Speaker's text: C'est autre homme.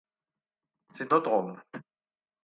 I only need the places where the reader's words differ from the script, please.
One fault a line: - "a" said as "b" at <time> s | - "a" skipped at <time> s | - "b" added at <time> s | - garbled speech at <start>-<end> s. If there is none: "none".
none